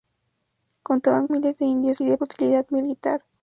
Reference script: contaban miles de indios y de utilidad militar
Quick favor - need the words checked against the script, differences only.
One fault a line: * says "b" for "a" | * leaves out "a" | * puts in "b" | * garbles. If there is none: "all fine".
all fine